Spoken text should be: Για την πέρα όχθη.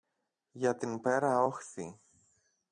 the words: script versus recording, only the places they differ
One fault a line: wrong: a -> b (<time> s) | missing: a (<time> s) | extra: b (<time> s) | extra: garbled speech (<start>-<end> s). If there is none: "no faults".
no faults